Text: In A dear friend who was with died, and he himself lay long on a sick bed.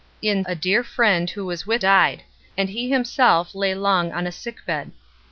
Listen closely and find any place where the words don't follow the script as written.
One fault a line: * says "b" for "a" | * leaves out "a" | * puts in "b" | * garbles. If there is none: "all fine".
all fine